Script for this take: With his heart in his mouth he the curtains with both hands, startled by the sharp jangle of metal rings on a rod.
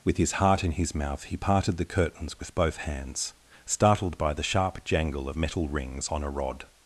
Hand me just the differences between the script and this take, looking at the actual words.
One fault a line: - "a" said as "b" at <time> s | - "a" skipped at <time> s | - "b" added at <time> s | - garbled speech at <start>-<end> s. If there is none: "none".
- "parted" added at 1.4 s